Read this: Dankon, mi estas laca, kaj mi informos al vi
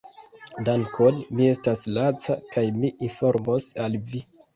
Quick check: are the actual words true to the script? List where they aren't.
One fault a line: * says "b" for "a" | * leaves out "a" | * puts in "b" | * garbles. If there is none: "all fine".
all fine